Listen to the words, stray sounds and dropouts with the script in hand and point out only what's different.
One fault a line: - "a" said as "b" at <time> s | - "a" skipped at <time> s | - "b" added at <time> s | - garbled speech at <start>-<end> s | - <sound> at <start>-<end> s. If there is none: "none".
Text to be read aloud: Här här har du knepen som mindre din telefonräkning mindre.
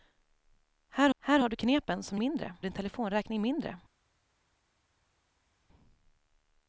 none